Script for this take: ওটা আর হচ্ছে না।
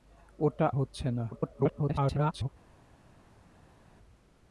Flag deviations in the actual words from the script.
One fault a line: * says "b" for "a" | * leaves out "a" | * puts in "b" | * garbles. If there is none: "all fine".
* leaves out "আর"
* garbles